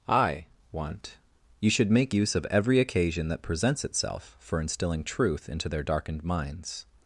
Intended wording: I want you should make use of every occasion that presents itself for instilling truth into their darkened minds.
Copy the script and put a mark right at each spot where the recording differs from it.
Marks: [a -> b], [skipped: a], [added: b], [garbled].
I want you should make use of every occasion that presents itself for instilling truth into their darkened minds.